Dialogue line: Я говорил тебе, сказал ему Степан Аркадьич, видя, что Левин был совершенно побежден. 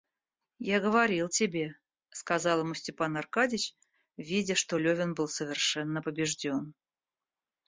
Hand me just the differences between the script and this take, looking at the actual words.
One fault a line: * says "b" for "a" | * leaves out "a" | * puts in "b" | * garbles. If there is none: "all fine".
all fine